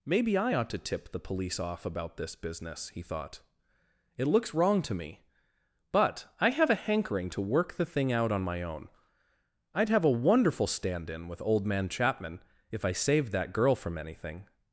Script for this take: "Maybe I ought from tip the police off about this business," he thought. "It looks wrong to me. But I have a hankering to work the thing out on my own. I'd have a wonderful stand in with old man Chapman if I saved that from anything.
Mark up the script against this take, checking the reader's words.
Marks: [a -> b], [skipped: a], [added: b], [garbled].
"Maybe I ought [from -> to] tip the police off about this business," he thought. "It looks wrong to me. But I have a hankering to work the thing out on my own. I'd have a wonderful stand in with old man Chapman if I saved that [added: girl] from anything.